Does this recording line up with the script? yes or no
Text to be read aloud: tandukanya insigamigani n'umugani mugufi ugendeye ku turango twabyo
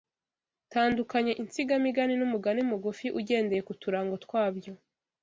yes